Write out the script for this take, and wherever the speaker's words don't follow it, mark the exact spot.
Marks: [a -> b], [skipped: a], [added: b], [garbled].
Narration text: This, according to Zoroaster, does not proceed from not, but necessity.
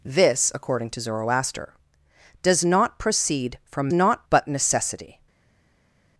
This, according to Zoroaster, does not proceed from not, but necessity.